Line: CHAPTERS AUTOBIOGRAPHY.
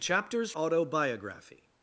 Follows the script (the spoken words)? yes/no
yes